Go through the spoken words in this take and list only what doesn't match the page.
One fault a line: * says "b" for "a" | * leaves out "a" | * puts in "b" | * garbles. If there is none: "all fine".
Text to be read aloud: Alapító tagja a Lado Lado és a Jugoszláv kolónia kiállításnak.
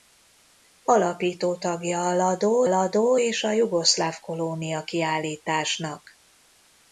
all fine